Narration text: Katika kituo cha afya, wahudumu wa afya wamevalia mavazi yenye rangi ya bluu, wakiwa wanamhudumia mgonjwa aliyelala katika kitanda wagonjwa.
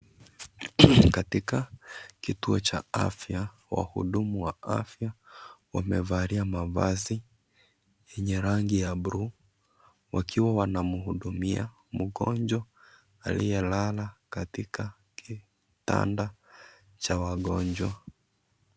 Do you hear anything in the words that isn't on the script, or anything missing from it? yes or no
yes